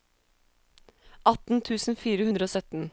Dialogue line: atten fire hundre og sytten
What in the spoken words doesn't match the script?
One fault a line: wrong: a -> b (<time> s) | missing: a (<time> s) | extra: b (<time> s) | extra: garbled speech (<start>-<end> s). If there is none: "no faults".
extra: tusen (1.7 s)